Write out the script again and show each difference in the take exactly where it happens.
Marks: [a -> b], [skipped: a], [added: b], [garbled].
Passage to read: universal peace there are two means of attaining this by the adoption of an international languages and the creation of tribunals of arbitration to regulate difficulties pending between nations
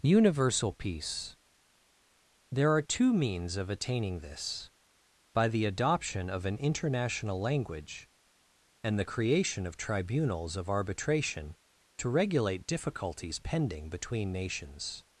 universal peace there are two means of attaining this by the adoption of an international [languages -> language] and the creation of tribunals of arbitration to regulate difficulties pending between nations